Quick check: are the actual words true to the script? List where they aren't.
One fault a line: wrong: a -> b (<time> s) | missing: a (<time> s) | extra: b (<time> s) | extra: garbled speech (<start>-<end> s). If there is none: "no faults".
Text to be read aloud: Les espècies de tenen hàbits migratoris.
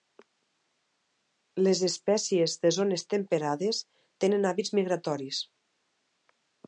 extra: zones temperades (2.8 s)